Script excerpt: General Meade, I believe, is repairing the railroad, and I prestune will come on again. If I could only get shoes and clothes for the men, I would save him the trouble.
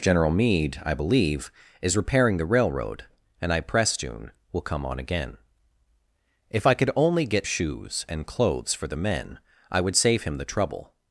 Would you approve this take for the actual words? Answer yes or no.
yes